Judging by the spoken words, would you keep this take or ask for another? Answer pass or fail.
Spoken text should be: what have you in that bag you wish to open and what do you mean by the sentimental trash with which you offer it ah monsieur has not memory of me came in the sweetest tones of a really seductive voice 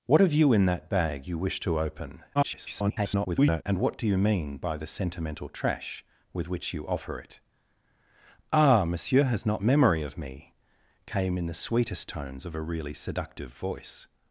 fail